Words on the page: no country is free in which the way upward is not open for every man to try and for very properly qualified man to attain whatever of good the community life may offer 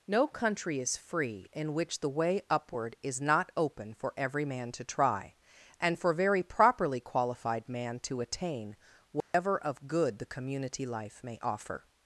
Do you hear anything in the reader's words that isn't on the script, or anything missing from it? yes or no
no